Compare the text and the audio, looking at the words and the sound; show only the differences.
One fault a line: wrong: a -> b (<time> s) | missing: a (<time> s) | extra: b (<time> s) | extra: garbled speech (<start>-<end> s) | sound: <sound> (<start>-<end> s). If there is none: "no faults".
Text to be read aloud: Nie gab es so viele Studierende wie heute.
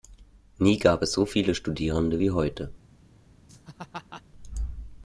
sound: laugh (3.5-4.2 s)